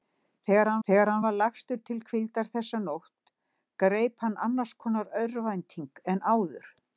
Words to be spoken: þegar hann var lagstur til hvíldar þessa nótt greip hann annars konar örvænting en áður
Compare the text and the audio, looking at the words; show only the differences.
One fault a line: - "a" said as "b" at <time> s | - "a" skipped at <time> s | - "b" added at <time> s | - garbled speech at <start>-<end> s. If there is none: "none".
- "þegar hann" added at 0.9 s